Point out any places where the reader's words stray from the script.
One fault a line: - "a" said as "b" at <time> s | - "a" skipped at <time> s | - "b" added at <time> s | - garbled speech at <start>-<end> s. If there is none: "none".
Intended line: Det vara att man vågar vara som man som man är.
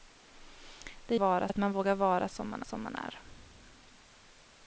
none